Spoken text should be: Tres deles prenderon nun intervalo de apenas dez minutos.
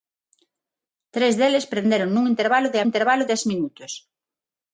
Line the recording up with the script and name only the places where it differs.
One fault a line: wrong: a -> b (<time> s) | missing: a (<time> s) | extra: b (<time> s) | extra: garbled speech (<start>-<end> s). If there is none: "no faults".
wrong: apenas -> intervalo (2.9 s)